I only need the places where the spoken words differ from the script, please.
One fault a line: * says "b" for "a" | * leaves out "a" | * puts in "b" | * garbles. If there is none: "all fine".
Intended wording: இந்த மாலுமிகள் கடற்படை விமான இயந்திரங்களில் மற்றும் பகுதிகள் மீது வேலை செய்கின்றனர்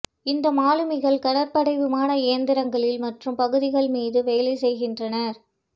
all fine